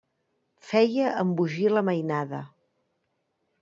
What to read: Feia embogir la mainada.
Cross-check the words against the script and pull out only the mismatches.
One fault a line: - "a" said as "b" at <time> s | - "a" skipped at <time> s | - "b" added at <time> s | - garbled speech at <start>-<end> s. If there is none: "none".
none